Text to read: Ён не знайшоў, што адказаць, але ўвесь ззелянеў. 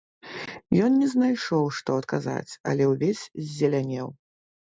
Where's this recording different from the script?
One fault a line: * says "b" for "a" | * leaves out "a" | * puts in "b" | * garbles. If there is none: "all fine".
all fine